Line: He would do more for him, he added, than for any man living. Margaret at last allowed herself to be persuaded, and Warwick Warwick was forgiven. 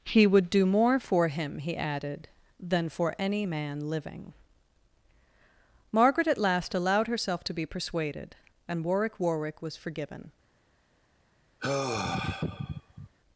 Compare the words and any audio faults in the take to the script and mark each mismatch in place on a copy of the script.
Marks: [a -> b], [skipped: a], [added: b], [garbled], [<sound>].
He would do more for him, he added, than for any man living. Margaret at last allowed herself to be persuaded, and Warwick Warwick was forgiven. [sigh]